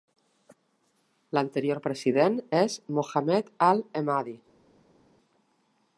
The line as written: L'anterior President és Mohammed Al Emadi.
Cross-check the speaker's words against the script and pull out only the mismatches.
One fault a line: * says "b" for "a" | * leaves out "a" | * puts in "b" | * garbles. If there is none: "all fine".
all fine